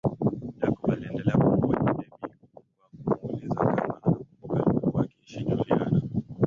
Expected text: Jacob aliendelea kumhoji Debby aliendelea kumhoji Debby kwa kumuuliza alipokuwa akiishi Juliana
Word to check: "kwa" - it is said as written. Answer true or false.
false